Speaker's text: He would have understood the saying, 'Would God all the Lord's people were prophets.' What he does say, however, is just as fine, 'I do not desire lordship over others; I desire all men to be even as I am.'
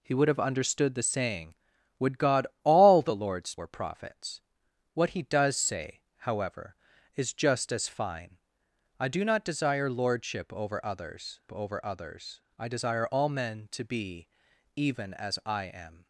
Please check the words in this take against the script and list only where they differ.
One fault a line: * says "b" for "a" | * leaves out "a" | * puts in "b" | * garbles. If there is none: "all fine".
* leaves out "people"
* puts in "over others"